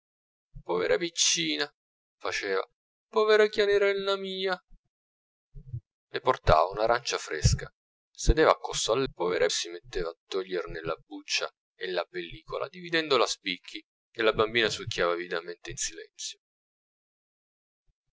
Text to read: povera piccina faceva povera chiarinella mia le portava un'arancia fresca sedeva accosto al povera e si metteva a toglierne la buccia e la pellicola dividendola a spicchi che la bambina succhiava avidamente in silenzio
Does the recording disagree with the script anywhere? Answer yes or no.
no